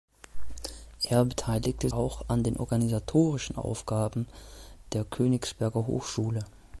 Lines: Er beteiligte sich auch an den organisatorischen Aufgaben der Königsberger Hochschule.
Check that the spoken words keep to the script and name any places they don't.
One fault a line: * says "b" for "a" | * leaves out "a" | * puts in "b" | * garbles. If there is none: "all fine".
* leaves out "sich"